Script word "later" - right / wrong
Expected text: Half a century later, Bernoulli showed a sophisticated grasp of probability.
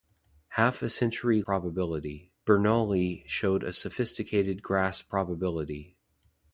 wrong